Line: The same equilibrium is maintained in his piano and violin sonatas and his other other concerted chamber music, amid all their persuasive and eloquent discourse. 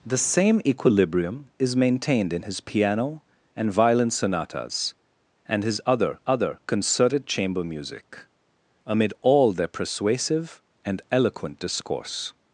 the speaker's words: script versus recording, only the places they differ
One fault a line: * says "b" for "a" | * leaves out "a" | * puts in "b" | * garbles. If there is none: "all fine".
all fine